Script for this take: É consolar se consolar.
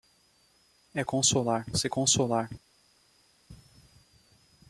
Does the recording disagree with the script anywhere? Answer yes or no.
no